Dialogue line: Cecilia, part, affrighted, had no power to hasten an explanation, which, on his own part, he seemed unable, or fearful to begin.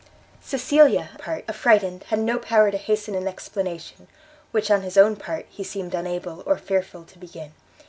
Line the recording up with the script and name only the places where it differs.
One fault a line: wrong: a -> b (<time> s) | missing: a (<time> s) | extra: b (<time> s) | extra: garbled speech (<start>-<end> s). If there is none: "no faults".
no faults